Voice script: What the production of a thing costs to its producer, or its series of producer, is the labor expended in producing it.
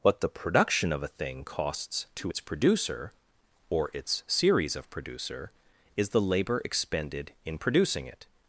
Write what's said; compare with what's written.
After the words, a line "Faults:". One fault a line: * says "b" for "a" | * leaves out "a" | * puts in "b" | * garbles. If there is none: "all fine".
What the production of a thing costs to its producer, or its series of producer, is the labor expended in producing it.
Faults:
all fine